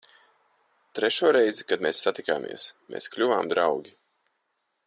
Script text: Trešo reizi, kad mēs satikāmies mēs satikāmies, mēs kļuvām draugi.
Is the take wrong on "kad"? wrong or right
right